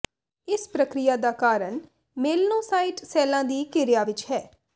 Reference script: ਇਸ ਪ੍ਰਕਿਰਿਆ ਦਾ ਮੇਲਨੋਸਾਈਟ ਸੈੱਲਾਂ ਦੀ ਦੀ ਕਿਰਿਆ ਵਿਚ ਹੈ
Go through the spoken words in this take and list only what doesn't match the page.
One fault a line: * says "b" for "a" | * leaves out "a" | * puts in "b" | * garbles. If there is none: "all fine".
* puts in "ਕਾਰਨ"
* leaves out "ਦੀ"